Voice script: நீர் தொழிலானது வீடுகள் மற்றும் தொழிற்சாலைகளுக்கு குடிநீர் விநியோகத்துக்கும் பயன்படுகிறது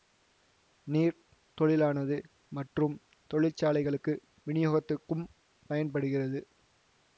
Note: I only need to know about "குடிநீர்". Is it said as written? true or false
false